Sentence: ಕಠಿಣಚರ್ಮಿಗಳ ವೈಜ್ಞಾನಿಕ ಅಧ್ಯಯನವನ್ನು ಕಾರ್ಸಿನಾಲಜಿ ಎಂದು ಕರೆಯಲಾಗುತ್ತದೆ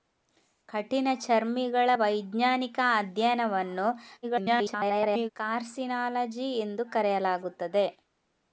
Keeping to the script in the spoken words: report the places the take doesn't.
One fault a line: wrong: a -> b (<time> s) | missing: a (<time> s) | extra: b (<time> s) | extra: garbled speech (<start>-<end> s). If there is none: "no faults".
extra: garbled speech (4.2-5.3 s)